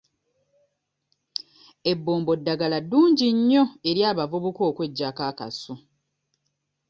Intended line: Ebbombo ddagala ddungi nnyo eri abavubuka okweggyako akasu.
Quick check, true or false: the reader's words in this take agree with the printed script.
true